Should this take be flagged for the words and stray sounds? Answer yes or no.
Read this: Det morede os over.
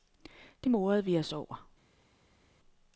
yes